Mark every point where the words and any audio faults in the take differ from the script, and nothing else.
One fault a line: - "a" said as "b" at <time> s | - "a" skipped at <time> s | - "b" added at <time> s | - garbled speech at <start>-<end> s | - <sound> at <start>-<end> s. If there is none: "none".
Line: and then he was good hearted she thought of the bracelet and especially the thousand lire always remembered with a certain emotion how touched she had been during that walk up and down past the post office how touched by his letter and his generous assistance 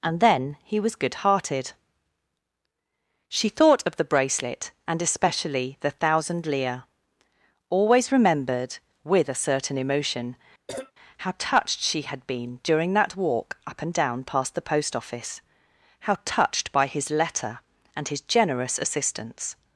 - cough at 10.7-10.9 s